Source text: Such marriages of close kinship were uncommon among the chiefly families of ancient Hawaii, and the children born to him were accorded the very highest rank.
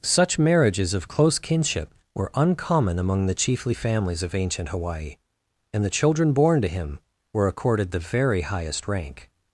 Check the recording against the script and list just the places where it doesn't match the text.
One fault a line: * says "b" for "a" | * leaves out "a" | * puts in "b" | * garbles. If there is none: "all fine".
all fine